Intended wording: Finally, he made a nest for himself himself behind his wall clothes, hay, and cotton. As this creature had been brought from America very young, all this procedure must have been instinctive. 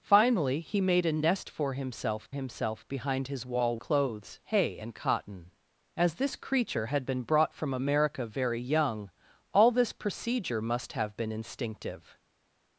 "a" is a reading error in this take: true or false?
false